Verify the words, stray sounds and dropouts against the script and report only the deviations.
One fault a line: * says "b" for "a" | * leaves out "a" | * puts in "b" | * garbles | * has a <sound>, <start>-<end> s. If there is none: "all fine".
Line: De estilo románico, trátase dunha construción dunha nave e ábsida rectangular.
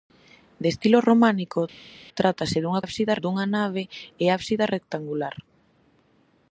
* says "ábsida" for "construción"